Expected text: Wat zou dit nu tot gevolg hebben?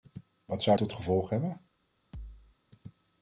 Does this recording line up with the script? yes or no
no